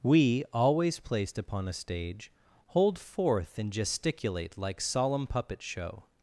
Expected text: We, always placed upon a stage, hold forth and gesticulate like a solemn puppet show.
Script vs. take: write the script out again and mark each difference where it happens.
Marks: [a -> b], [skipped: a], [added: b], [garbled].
We, always placed upon a stage, hold forth and gesticulate like [skipped: a] solemn puppet show.